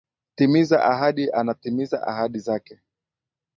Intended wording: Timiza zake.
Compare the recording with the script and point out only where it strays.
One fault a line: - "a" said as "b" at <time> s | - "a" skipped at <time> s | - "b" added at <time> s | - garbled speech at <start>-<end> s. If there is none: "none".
- "ahadi anatimiza ahadi" added at 0.8 s